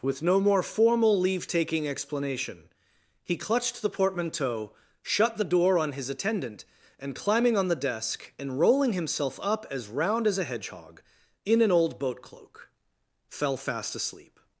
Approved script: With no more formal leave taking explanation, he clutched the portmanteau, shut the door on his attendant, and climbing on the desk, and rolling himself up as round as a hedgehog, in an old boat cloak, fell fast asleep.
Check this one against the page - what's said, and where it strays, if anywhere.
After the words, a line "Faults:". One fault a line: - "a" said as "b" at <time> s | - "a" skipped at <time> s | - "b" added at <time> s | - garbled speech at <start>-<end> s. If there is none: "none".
With no more formal leave taking explanation, he clutched the portmanteau, shut the door on his attendant, and climbing on the desk, and rolling himself up as round as a hedgehog, in an old boat cloak, fell fast asleep.
Faults:
none